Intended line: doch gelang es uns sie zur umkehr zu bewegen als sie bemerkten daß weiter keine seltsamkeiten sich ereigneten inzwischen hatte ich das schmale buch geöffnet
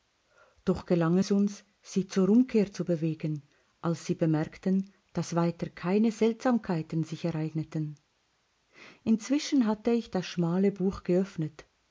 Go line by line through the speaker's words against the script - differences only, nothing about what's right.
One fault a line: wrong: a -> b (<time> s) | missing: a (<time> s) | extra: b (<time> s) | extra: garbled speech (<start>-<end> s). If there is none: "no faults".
no faults